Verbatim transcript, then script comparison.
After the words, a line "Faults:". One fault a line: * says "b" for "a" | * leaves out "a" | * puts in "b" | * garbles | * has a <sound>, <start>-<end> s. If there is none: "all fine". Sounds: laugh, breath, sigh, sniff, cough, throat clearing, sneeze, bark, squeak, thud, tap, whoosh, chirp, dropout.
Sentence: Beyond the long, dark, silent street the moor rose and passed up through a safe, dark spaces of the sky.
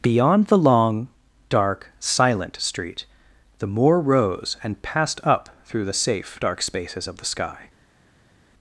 Beyond the long, dark, silent street the moor rose and passed up through the safe, dark spaces of the sky.
Faults:
* says "the" for "a"